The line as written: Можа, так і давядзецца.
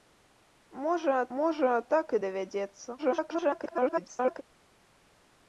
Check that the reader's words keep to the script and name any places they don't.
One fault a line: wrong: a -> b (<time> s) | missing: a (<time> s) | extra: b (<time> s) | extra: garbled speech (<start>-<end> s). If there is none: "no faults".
extra: можа (1.4 s)
extra: garbled speech (3.0-4.4 s)